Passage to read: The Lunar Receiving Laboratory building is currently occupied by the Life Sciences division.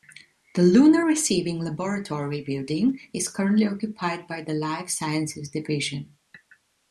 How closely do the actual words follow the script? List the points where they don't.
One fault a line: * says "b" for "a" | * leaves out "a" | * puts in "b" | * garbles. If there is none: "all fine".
all fine